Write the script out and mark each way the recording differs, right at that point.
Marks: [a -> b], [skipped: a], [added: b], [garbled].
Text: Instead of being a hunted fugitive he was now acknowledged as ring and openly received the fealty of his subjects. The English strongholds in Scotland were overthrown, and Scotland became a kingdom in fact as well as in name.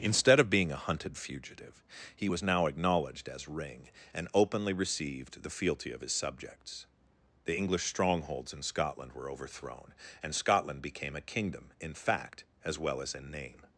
Instead of being a hunted fugitive he was now acknowledged as ring and openly received the fealty of his subjects. The English strongholds in Scotland were overthrown, and Scotland became a kingdom in fact as well as in name.